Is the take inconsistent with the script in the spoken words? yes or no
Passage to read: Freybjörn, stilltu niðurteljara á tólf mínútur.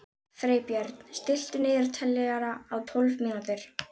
no